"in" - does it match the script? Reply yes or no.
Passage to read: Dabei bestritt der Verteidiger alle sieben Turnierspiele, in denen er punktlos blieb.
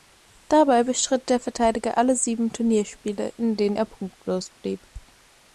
yes